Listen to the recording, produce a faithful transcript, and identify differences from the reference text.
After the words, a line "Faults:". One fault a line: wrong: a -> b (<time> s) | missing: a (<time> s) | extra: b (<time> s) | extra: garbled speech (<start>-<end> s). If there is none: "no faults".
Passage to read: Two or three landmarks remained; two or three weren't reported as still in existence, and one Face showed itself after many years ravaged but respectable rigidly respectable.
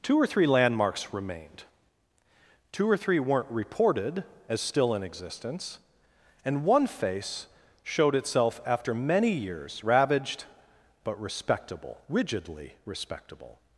Two or three landmarks remained; two or three weren't reported as still in existence, and one Face showed itself after many years ravaged but respectable rigidly respectable.
Faults:
no faults